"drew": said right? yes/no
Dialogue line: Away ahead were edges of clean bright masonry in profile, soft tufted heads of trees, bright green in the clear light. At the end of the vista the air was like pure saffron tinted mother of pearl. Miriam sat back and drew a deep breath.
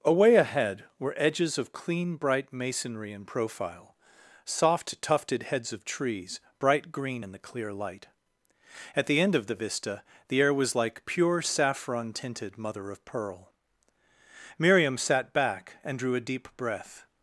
yes